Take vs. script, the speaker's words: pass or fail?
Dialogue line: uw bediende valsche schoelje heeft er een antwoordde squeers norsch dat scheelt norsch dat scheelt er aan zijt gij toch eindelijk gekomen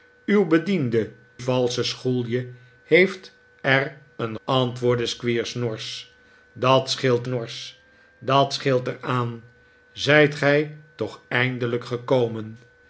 pass